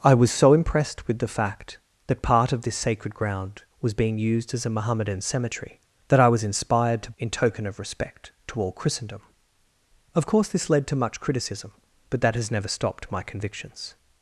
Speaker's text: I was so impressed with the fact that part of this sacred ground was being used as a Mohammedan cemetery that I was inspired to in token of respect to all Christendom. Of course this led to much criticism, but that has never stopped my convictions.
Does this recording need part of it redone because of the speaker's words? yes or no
no